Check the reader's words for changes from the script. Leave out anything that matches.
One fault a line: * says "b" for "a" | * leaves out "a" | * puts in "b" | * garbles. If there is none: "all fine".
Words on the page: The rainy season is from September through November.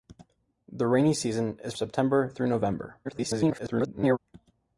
* leaves out "from"
* garbles